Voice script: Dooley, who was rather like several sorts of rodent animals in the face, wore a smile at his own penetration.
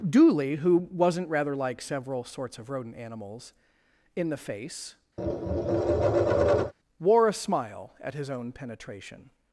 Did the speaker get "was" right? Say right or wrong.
wrong